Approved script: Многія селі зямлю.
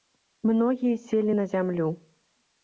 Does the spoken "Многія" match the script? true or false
true